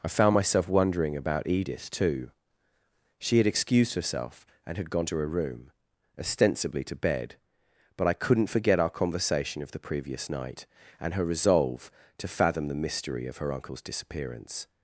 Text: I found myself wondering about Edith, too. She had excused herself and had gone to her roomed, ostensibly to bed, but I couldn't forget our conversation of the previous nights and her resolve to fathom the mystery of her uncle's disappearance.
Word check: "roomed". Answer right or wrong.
wrong